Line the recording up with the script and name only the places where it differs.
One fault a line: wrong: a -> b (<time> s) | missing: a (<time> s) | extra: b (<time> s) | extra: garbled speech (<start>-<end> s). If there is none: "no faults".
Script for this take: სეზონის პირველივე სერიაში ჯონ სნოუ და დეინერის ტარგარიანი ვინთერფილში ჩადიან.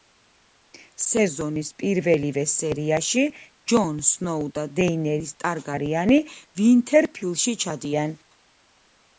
no faults